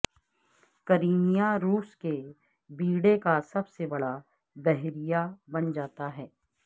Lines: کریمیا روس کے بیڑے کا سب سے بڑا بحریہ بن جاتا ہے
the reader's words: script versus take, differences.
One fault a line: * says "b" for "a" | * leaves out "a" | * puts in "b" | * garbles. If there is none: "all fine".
all fine